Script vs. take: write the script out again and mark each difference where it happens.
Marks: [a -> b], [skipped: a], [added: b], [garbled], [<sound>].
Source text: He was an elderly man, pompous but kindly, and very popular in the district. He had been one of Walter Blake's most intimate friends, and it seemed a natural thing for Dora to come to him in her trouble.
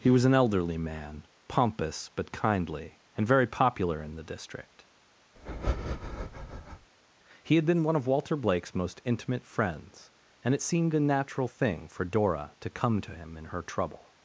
He was an elderly man, pompous but kindly, and very popular in the district. [breath] He had been one of Walter Blake's most intimate friends, and it seemed a natural thing for Dora to come to him in her trouble.